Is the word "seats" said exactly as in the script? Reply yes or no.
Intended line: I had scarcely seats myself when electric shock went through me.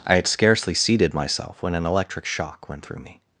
no